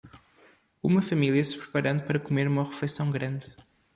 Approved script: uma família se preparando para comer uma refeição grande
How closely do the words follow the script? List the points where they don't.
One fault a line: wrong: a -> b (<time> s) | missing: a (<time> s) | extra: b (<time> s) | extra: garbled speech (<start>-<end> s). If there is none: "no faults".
no faults